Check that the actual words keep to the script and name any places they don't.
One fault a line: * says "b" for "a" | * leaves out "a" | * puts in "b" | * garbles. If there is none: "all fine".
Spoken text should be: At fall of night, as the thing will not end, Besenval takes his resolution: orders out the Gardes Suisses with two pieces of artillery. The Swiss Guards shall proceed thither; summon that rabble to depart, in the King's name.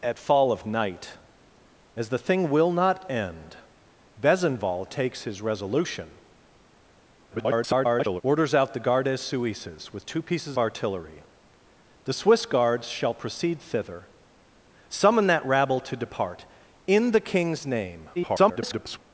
* garbles
* leaves out "of"
* garbles